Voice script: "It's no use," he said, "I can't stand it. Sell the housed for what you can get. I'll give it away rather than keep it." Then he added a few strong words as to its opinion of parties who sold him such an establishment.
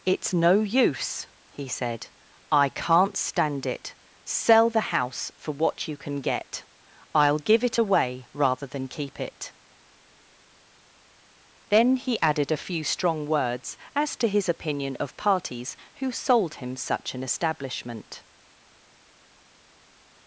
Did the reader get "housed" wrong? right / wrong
wrong